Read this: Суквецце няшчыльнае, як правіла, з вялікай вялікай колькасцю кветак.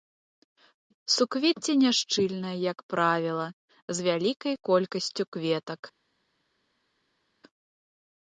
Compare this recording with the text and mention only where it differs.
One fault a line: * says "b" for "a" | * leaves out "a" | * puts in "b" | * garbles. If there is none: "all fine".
* leaves out "вялікай"